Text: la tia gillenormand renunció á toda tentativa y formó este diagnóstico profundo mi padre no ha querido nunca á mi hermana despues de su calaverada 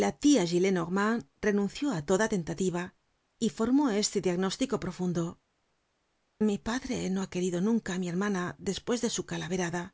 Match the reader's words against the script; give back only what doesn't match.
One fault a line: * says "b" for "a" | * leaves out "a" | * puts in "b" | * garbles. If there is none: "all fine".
all fine